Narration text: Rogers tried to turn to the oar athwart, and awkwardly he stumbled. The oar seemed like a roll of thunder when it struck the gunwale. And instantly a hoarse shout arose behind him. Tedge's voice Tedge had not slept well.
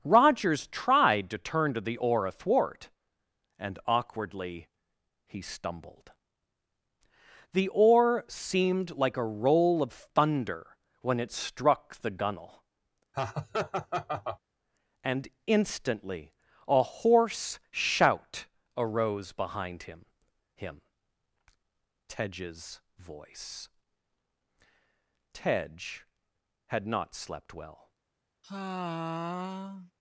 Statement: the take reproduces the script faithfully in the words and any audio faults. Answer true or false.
false